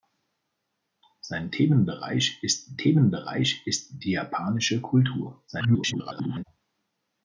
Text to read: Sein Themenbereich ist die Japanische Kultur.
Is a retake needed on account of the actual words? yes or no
yes